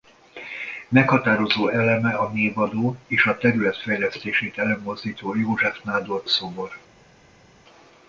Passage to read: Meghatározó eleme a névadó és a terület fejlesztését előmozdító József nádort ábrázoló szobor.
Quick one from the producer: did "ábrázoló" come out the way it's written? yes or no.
no